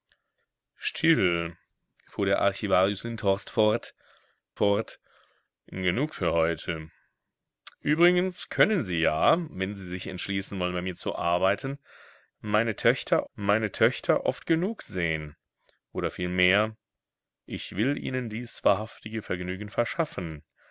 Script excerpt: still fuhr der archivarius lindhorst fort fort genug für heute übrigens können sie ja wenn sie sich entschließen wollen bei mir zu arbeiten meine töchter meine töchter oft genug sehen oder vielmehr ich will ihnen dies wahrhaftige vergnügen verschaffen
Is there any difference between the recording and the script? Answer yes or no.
no